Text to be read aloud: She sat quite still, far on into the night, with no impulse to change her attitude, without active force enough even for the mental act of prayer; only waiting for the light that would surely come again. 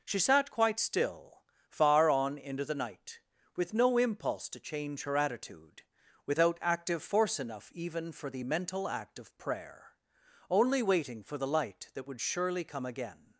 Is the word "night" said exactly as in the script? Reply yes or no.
yes